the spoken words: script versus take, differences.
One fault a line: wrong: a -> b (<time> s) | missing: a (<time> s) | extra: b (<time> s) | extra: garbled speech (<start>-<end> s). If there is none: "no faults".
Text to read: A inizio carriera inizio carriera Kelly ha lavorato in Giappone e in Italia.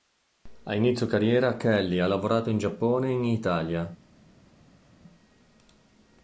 missing: inizio carriera (1.6 s)